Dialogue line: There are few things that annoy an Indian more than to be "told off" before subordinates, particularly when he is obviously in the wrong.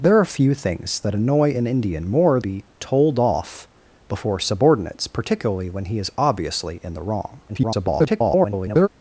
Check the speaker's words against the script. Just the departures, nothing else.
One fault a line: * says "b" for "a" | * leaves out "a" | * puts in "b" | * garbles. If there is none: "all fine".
* leaves out "than to"
* garbles